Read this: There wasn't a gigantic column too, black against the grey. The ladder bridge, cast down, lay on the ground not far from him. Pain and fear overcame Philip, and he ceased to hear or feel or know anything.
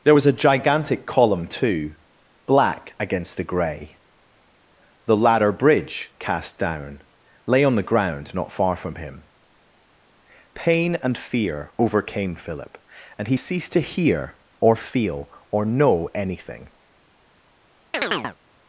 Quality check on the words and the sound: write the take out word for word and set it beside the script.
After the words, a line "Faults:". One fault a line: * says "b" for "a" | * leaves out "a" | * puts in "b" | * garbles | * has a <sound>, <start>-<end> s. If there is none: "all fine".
There was a gigantic column too, black against the grey. The ladder bridge, cast down, lay on the ground not far from him. Pain and fear overcame Philip, and he ceased to hear or feel or know anything.
Faults:
* says "was" for "wasn't"
* has a chirp, 17.9-18.4 s